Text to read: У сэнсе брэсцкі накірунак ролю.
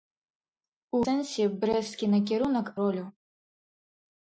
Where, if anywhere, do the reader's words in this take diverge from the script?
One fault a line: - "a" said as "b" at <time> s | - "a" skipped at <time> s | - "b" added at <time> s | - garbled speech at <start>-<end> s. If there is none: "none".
none